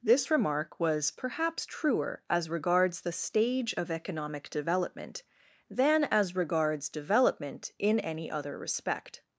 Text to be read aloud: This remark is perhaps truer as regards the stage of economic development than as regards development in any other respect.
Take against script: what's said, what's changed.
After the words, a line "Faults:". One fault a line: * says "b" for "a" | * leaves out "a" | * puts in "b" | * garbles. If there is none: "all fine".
This remark was perhaps truer as regards the stage of economic development than as regards development in any other respect.
Faults:
* says "was" for "is"